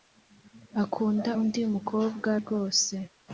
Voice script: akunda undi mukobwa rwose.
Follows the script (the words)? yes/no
yes